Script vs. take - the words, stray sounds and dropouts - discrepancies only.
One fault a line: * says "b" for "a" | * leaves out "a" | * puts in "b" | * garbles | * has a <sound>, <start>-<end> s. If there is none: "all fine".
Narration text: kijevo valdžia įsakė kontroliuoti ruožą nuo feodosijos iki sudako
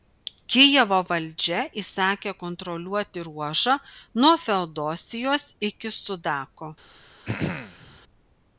* has a throat clearing, 7.3-8.0 s